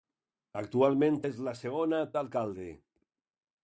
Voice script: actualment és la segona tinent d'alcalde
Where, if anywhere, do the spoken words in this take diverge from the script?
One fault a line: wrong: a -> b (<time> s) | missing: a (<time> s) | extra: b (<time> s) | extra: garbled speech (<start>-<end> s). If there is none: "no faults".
missing: tinent (2.0 s)